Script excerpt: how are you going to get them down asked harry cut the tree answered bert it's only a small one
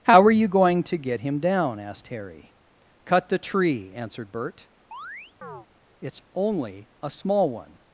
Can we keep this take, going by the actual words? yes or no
no